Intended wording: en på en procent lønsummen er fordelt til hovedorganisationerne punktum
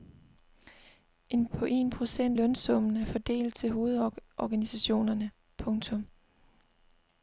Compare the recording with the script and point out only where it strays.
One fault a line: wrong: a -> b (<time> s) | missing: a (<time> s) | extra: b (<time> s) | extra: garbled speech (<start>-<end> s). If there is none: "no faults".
no faults